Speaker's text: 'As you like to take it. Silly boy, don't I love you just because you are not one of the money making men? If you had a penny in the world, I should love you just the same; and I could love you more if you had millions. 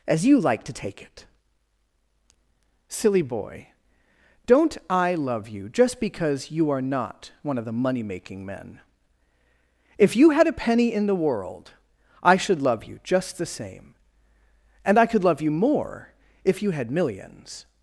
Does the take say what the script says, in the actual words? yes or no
yes